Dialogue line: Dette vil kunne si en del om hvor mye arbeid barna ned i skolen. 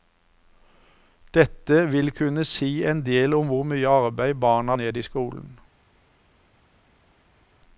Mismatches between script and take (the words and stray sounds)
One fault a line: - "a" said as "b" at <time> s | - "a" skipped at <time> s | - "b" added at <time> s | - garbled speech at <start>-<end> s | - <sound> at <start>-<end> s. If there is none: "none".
none